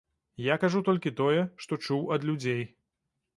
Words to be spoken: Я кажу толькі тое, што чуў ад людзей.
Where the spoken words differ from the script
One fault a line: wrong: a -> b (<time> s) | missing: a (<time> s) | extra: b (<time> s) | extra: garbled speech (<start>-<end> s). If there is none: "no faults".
no faults